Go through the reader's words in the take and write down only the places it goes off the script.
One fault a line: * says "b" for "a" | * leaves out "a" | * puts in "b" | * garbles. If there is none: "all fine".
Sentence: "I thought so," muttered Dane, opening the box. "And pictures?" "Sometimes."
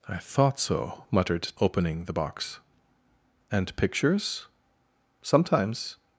* leaves out "Dane"